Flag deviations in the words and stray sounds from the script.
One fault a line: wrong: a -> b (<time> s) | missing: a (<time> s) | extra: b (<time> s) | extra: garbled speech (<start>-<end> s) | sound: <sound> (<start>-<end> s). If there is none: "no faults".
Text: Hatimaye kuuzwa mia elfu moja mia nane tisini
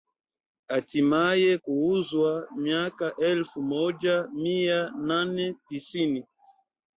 wrong: mia -> mwaka (2.5 s)